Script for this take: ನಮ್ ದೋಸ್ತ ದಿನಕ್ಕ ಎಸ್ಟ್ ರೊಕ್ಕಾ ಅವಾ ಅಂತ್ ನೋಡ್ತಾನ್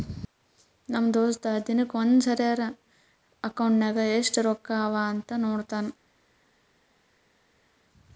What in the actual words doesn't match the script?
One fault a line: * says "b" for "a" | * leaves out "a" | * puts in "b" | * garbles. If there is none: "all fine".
* puts in "ಒಂದ್ ಸರಿರೇ ಅಕೌಂಟ್ನಾಗ್"